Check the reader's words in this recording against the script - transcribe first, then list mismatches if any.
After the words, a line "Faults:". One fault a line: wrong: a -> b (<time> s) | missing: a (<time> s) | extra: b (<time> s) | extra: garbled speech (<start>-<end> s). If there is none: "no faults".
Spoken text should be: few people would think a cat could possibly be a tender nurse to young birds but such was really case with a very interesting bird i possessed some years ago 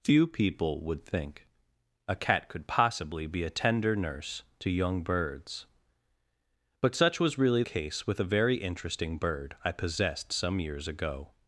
few people would think a cat could possibly be a tender nurse to young birds but such was really case with a very interesting bird i possessed some years ago
Faults:
no faults